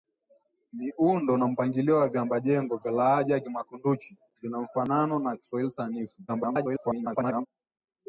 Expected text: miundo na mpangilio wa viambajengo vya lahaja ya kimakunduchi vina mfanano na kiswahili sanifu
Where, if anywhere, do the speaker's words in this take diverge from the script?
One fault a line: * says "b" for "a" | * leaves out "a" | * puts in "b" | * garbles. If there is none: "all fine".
* garbles